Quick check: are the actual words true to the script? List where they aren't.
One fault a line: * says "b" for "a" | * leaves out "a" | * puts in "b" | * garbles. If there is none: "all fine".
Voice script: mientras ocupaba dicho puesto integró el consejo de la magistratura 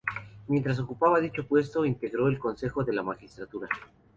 all fine